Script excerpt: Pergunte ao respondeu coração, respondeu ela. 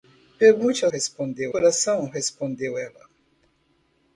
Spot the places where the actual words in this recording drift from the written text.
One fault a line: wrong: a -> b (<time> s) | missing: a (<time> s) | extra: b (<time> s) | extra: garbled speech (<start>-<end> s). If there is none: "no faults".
no faults